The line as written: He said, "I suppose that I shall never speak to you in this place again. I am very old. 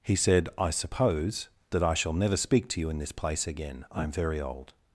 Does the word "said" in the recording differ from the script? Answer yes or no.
no